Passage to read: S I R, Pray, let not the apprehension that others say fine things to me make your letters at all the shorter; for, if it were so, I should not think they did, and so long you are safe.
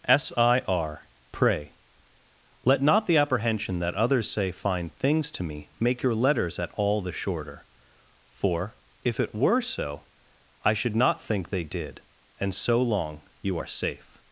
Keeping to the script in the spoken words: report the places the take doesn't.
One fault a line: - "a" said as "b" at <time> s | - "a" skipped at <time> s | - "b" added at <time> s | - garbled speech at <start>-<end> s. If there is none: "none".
none